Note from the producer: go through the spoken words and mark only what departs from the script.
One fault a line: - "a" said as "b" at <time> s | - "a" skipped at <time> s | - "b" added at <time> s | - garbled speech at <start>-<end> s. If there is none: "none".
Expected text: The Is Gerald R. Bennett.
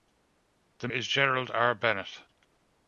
none